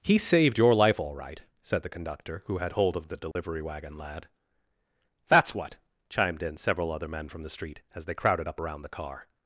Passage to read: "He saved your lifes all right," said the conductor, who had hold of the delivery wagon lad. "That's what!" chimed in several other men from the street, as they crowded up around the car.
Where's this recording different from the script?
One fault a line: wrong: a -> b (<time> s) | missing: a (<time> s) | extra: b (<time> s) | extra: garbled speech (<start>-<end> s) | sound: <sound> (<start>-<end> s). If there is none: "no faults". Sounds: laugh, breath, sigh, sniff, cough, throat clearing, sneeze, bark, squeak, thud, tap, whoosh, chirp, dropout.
wrong: lifes -> life (0.7 s)
sound: dropout (3.3-3.4 s)